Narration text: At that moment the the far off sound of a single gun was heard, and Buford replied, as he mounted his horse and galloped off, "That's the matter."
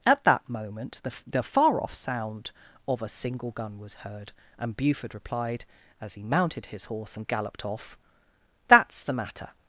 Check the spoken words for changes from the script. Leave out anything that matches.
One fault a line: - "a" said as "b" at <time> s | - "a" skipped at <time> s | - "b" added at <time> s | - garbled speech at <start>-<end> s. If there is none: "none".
none